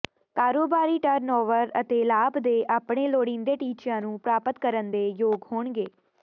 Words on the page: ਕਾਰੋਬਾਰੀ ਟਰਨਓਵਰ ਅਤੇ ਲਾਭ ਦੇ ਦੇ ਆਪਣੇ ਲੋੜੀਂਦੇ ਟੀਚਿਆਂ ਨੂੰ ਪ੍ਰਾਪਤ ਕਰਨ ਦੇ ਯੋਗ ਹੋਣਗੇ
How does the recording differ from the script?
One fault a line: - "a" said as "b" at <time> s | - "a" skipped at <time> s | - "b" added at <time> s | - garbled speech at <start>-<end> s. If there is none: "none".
- "ਦੇ" skipped at 2.5 s